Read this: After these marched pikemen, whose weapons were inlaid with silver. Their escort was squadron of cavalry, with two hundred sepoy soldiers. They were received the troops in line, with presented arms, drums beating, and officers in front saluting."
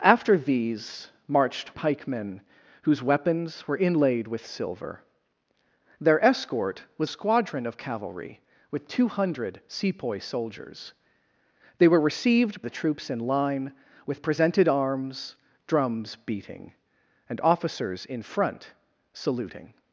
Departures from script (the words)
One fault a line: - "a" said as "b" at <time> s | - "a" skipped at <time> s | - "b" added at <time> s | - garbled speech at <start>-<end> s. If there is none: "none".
none